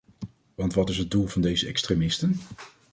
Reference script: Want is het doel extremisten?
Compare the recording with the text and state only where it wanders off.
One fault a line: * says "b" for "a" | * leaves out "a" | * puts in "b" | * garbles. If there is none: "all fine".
* puts in "wat"
* puts in "van deze"